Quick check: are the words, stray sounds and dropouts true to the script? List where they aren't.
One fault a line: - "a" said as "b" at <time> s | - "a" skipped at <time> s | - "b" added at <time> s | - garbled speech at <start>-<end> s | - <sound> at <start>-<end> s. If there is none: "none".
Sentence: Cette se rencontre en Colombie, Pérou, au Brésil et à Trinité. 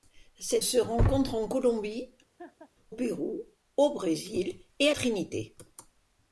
- laugh at 2.4-2.7 s